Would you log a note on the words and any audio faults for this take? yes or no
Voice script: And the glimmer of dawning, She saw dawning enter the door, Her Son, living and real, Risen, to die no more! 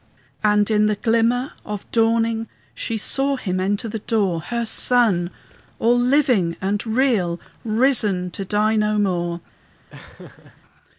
yes